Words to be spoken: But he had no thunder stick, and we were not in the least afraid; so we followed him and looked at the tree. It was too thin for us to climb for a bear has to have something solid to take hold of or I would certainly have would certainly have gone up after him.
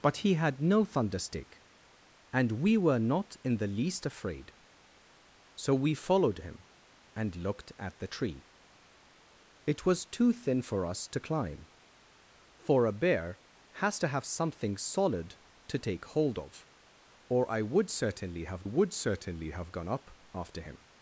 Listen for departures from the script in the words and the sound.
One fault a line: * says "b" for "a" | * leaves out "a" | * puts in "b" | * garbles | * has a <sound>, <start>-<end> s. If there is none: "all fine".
all fine